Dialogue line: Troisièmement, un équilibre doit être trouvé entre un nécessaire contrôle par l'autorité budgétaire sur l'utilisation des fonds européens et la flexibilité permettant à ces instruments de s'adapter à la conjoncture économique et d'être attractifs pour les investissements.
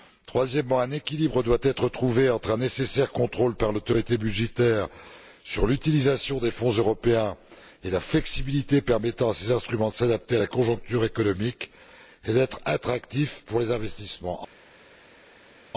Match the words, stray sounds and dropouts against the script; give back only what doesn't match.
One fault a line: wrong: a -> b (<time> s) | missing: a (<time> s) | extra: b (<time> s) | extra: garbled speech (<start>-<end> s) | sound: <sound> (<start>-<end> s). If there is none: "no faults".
no faults